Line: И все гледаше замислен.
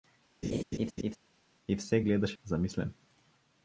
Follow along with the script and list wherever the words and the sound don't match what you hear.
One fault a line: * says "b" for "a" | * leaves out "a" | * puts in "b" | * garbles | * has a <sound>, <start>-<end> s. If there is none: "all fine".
* has a laugh, 0.4-1.2 s